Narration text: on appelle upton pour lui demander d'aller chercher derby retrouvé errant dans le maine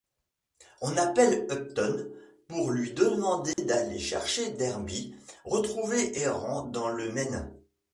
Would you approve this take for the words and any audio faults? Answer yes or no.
no